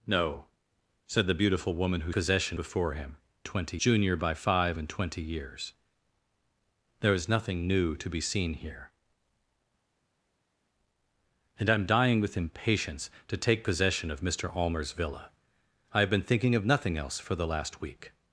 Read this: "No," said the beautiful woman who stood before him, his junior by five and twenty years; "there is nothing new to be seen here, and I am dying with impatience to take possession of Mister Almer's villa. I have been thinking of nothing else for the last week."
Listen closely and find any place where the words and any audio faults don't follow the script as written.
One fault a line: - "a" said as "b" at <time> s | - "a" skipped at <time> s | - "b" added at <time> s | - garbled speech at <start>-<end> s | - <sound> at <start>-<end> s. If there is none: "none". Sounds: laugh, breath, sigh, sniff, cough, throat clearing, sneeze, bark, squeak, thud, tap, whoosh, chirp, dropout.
- "stood" said as "possession" at 2.1 s
- "his" said as "twenty" at 3.4 s